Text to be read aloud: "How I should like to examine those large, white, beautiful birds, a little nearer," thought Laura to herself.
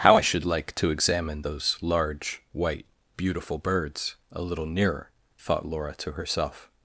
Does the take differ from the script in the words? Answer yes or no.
no